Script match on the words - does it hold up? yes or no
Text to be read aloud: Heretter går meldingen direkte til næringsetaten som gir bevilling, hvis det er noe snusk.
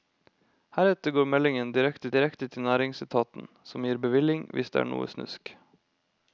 no